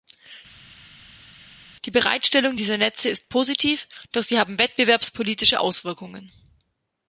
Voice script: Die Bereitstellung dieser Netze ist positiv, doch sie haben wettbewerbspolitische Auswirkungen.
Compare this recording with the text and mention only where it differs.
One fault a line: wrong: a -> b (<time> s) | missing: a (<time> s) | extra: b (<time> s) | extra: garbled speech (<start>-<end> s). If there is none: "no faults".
no faults